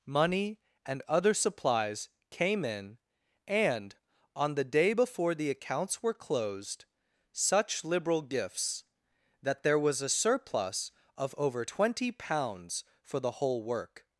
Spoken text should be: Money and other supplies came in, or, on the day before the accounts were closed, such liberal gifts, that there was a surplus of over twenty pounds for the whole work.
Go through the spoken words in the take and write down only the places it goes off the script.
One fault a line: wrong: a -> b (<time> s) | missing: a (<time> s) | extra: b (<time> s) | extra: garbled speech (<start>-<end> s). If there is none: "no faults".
wrong: or -> and (3.5 s)